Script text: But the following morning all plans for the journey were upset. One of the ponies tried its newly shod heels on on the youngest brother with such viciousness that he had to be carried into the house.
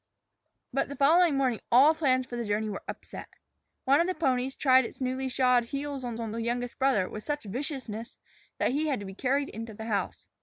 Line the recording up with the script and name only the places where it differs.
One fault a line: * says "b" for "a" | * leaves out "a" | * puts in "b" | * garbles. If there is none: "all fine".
all fine